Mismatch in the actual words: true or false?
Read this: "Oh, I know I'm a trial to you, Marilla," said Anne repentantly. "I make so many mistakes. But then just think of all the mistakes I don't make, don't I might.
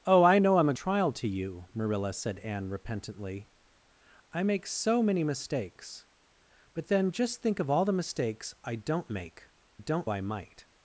false